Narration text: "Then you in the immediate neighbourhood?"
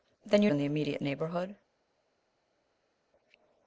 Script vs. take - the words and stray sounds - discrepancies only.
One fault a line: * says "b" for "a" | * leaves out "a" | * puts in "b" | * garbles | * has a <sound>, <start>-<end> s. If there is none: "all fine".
all fine